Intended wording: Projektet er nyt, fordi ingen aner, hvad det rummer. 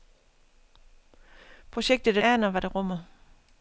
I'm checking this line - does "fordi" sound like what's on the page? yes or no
no